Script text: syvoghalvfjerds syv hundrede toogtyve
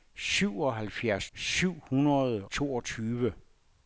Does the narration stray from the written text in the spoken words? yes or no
no